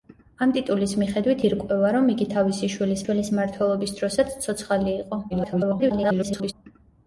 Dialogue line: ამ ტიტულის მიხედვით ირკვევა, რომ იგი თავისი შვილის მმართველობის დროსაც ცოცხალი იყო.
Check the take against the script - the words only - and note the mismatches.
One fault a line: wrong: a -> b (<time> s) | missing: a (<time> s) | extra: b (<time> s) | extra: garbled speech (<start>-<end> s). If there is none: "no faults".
extra: შვილის (3.0 s)
extra: garbled speech (5.3-6.5 s)